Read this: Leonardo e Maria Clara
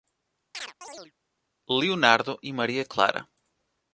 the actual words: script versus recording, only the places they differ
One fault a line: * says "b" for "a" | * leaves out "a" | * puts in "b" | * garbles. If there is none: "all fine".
all fine